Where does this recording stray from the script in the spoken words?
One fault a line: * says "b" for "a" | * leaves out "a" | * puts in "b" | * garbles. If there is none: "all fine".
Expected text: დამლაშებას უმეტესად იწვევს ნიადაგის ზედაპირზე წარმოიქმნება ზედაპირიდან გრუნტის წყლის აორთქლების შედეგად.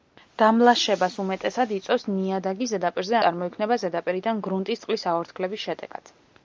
all fine